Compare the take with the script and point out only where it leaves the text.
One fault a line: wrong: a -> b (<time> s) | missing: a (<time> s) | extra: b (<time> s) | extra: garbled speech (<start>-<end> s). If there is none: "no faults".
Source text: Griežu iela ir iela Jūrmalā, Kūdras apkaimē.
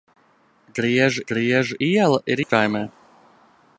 extra: griežu (1.3 s)
missing: iela Jūrmalā Kūdras (2.4 s)